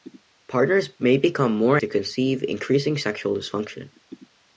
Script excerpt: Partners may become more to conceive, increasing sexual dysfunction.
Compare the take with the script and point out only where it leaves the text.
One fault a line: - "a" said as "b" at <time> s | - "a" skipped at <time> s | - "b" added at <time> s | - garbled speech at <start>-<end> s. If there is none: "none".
none